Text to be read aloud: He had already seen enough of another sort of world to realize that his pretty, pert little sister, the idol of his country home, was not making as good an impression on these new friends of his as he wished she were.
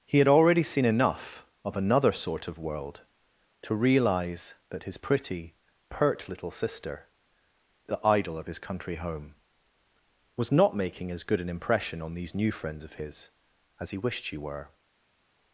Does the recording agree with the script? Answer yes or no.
yes